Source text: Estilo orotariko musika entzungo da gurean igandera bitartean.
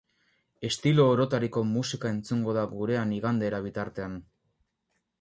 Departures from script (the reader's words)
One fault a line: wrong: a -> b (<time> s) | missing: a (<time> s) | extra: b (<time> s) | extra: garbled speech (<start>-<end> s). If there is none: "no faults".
no faults